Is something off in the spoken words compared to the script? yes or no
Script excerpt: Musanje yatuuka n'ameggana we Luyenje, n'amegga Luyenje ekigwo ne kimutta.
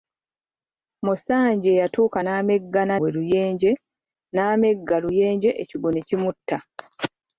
no